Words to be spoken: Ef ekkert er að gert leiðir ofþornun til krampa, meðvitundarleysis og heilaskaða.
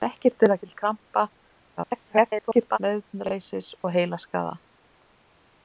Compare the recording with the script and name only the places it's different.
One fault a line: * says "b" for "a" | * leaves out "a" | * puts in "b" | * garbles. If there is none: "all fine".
* leaves out "gert leiðir ofþornun"
* garbles